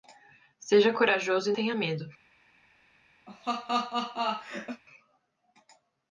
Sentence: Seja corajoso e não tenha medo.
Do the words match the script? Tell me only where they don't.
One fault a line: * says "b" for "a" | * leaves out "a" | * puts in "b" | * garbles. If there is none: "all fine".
* leaves out "não"